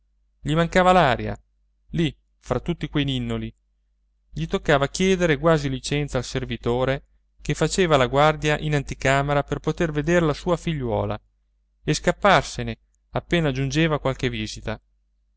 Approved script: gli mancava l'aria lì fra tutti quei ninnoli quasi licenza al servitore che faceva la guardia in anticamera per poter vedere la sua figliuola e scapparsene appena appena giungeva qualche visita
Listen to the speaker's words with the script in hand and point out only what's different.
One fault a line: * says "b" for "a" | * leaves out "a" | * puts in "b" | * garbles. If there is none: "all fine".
* puts in "gli toccava chiedere"
* leaves out "appena"